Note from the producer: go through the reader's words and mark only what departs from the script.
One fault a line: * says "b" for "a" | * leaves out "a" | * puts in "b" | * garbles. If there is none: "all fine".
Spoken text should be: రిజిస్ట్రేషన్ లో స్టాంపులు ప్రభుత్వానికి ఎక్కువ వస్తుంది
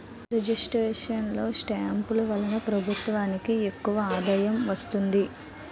* puts in "వలన"
* puts in "ఆదాయం"